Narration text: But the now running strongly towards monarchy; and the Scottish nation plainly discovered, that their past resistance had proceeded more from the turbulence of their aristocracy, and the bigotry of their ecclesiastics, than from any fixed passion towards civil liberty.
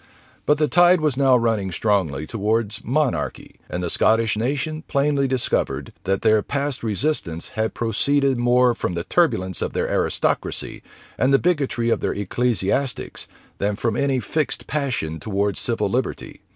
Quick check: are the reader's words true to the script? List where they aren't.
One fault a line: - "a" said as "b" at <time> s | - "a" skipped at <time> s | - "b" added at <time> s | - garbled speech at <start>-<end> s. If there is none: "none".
- "tide was" added at 0.7 s